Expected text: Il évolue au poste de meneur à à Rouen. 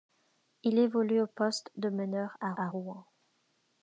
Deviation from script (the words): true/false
false